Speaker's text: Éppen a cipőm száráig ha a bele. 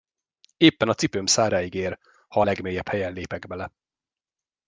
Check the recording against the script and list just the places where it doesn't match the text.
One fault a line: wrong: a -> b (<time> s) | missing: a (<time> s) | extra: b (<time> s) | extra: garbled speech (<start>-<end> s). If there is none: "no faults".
extra: ér (1.7 s)
extra: legmélyebb helyen lépek (2.4 s)